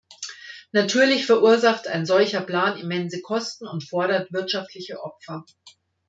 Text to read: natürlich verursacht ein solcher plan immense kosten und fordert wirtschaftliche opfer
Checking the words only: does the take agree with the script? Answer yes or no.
yes